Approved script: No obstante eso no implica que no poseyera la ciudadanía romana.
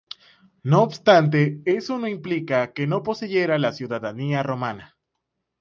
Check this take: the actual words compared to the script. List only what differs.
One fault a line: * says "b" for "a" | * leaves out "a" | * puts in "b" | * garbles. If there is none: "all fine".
all fine